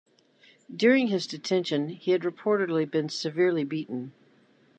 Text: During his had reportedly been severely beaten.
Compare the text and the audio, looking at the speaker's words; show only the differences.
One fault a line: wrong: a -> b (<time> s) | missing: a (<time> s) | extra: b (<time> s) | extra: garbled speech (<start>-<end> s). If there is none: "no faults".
extra: detention he (1.3 s)